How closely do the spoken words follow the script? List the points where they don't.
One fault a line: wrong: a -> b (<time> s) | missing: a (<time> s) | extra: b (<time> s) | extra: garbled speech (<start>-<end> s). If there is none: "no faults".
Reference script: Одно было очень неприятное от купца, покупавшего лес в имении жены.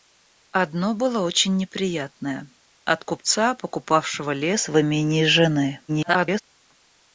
extra: garbled speech (5.9-6.4 s)